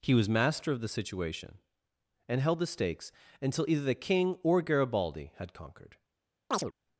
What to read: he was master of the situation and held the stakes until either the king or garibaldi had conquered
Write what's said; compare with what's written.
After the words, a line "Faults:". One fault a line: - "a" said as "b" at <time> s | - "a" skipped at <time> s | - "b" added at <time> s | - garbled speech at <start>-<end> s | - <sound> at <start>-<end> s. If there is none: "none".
he was master of the situation and held the stakes until either the king or garibaldi had conquered
Faults:
- chirp at 6.5-6.7 s